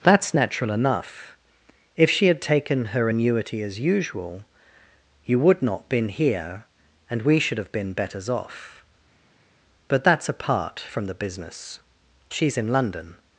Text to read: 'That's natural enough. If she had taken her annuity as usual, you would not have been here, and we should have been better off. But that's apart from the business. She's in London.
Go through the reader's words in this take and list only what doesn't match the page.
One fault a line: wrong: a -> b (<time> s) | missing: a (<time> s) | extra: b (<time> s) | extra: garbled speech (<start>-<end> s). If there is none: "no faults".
missing: have (5.9 s)
wrong: better -> betters (7.9 s)